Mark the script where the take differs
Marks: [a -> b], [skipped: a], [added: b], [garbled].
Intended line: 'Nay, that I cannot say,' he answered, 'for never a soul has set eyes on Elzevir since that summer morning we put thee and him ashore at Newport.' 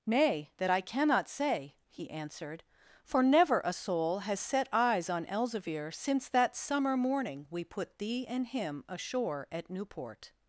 'Nay, that I cannot say,' he answered, 'for never a soul has set eyes on Elzevir since that summer morning we put thee and him ashore at Newport.'